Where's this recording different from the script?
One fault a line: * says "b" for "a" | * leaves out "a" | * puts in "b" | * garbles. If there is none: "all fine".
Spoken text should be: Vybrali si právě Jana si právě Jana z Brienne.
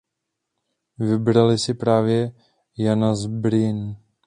* leaves out "si právě Jana"